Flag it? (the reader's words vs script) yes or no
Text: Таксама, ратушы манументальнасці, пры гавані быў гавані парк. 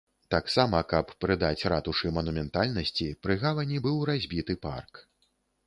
yes